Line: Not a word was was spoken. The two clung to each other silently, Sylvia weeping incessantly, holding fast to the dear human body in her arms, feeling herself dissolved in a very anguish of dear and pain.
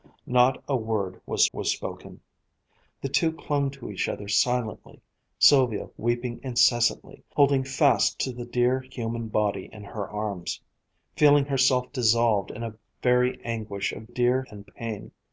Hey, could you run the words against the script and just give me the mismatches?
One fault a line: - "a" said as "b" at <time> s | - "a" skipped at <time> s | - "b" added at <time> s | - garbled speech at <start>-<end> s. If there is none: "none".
none